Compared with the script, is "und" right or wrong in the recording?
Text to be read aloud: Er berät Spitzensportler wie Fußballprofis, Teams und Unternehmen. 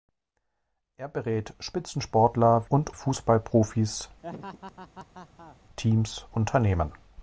wrong